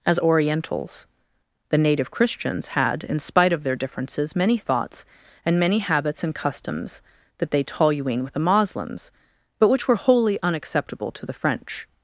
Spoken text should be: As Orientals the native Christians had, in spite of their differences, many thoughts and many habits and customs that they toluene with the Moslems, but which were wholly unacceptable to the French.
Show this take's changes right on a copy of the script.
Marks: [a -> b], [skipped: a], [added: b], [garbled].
As Orientals the native Christians had, in spite of their differences, many thoughts and many habits and customs that they toluene with the Moslems, but which were wholly unacceptable to the French.